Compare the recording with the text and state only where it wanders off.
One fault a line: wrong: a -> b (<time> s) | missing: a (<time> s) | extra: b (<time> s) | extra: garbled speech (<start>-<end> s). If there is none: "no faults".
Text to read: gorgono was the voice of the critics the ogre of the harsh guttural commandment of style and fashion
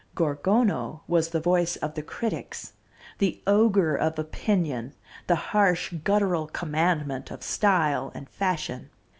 extra: opinion (4.2 s)